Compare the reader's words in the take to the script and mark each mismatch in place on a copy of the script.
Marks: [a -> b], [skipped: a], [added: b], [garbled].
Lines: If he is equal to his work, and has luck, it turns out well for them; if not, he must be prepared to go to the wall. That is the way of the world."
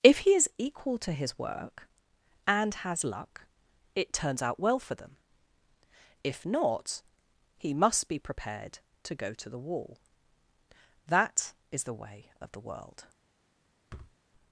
If he is equal to his work, and has luck, it turns out well for them; if not, he must be prepared to go to the wall. That is the way of the world."